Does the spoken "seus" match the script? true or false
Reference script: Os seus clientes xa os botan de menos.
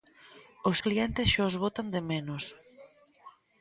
false